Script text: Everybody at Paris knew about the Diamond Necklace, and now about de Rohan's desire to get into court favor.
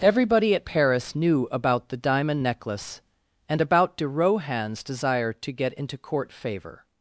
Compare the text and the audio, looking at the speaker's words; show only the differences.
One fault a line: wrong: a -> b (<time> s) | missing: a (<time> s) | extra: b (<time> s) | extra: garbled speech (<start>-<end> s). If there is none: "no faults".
missing: now (3.6 s)